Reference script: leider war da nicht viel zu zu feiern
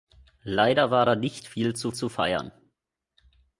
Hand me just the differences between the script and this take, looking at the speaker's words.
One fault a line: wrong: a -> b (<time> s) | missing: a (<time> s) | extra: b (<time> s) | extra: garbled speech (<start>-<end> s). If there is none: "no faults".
no faults